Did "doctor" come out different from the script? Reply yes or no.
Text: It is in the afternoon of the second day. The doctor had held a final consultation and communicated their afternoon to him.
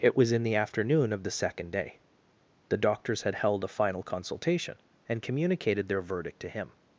yes